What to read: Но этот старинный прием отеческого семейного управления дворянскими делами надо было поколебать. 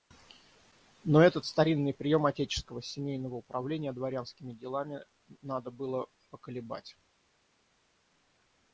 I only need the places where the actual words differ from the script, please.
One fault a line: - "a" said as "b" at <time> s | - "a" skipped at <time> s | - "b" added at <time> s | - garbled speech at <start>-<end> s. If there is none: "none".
none